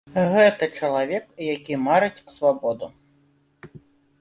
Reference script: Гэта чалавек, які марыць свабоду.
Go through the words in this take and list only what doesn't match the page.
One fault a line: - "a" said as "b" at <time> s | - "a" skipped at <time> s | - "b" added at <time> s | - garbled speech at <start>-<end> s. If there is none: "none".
none